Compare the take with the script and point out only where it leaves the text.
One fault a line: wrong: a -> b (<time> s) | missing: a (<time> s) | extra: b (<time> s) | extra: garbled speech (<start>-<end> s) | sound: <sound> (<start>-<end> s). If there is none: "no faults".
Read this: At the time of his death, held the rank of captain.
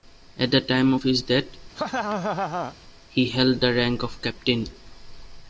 sound: laugh (1.7-2.8 s)
extra: he (3.1 s)